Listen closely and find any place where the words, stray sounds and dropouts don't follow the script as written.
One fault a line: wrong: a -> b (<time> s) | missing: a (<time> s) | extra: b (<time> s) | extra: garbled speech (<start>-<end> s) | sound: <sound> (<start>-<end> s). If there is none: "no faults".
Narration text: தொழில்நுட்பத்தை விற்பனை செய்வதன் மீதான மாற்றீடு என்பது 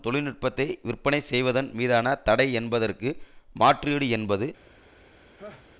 extra: தடை என்பதற்கு (2.2 s)
sound: laugh (5.4-5.7 s)